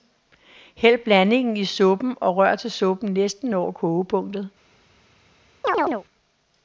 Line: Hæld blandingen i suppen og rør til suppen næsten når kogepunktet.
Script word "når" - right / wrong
right